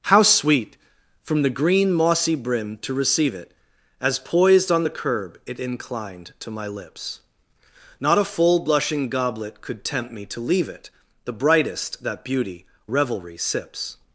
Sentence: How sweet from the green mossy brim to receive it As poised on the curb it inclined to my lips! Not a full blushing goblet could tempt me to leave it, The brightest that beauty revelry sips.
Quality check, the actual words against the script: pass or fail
pass